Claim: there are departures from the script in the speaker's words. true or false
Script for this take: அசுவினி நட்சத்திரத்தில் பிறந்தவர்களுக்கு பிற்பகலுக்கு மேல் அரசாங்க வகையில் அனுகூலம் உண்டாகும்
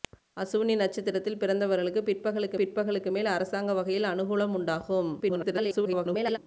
true